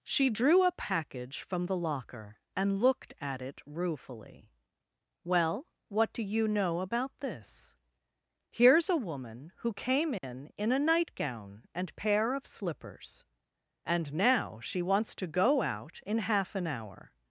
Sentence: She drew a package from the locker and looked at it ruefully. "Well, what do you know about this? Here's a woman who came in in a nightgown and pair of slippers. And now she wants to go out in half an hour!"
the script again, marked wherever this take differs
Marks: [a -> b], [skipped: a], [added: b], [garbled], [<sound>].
She drew a package from the locker and looked at it ruefully. "Well, what do you know about this? Here's a woman who came in [dropout] in a nightgown and pair of slippers. And now she wants to go out in half an hour!"